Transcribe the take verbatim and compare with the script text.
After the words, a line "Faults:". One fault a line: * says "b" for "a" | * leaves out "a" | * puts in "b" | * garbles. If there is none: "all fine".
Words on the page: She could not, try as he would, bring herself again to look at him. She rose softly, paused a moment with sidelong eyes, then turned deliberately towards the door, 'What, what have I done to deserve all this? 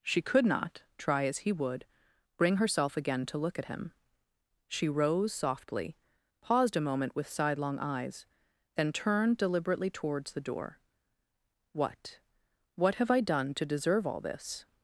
She could not, try as he would, bring herself again to look at him. She rose softly, paused a moment with sidelong eyes, then turned deliberately towards the door, 'What, what have I done to deserve all this?
Faults:
all fine